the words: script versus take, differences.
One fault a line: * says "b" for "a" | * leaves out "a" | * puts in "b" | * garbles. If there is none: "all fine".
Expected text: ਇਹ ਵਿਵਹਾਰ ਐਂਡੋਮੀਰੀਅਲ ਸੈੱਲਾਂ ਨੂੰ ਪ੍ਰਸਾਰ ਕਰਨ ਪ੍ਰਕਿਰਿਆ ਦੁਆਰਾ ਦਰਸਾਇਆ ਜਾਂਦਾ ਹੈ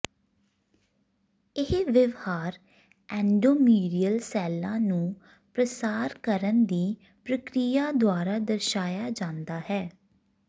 * puts in "ਦੀ"